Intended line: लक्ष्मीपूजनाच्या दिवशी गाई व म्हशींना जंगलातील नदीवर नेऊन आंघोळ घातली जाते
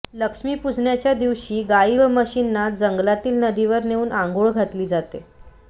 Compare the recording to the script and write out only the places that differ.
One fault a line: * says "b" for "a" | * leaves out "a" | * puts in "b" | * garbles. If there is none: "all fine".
all fine